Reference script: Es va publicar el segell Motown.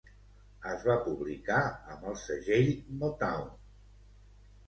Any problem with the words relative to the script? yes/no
yes